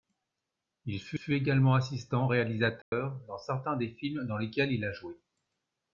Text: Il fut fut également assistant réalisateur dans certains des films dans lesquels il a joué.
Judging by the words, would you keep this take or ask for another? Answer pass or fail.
pass